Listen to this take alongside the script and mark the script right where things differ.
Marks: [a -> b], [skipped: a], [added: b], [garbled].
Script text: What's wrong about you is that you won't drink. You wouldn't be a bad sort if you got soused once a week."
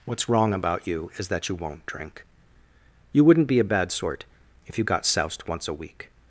What's wrong about you is that you won't drink. You wouldn't be a bad sort if you got soused once a week."